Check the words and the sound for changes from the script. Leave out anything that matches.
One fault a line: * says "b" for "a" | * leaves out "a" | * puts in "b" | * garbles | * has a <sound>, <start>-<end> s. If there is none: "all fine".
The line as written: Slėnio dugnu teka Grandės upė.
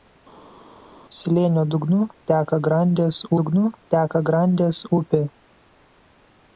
* puts in "dugnu teka Grandės"